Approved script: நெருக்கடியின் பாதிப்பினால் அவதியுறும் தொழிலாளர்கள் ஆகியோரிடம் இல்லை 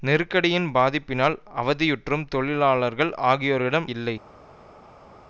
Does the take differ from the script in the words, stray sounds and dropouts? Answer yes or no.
no